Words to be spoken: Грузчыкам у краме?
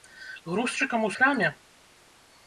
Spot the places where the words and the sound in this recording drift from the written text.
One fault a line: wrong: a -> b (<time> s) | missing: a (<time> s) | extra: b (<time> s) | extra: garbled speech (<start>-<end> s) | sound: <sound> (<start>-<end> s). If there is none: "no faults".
no faults